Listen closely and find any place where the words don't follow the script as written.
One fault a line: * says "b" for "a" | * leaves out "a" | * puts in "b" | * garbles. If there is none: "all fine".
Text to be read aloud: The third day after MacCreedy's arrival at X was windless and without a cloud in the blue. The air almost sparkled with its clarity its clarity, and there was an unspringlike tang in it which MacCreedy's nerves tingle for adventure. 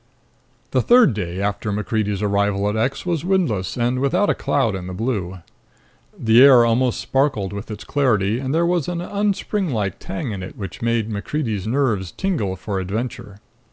* leaves out "its clarity"
* puts in "made"